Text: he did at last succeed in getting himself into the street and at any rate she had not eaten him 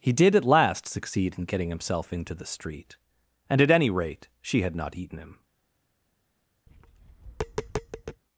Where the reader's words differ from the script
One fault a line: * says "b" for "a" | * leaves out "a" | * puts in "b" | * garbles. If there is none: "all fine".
all fine